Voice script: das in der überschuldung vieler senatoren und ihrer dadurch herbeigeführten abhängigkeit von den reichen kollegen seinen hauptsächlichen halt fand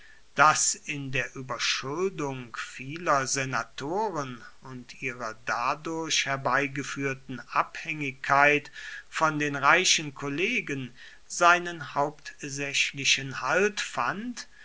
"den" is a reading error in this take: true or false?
false